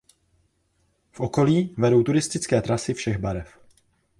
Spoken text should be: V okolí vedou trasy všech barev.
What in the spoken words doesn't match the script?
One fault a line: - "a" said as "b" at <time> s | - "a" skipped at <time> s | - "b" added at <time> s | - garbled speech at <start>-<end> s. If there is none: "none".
- "turistické" added at 2.0 s